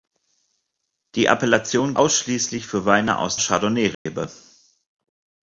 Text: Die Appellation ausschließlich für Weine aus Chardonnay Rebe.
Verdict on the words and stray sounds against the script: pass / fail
fail